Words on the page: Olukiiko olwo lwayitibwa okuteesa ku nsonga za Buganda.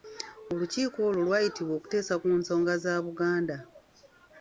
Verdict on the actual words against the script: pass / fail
pass